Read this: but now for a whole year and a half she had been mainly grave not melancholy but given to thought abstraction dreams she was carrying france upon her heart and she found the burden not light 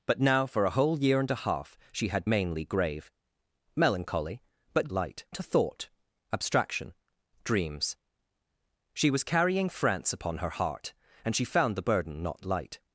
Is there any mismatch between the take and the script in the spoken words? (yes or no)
yes